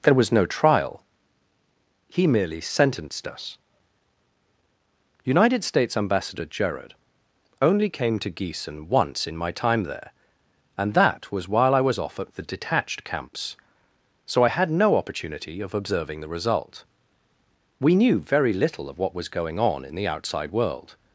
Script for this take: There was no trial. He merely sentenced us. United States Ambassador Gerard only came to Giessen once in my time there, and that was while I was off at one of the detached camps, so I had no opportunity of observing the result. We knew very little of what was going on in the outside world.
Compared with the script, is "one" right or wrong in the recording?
wrong